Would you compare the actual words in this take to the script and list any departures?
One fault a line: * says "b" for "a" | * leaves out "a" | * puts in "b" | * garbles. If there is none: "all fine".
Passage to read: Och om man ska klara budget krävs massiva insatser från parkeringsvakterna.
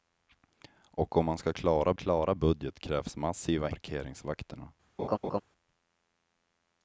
* puts in "klara"
* leaves out "insatser från"